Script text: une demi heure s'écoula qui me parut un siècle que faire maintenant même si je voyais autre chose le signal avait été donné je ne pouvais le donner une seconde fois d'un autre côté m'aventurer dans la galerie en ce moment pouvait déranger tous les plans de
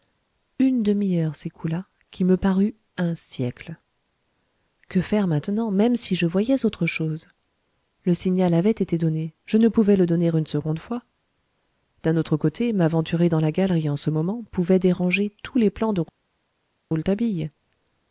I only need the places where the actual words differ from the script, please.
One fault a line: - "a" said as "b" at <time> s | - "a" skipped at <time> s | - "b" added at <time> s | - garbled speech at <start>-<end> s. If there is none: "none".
none